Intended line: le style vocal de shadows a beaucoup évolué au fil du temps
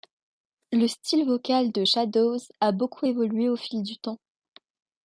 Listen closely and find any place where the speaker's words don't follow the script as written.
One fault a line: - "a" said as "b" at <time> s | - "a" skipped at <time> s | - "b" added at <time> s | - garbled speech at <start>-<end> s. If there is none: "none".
none